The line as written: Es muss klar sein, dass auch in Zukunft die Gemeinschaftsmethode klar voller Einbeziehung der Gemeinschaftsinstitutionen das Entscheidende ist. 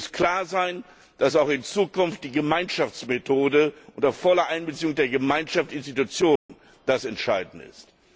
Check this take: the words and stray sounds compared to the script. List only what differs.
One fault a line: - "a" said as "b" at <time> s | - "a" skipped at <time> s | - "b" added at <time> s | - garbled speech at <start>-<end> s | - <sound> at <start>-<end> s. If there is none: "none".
- "klar" said as "unter" at 4.0 s
- dropout at 6.4-6.5 s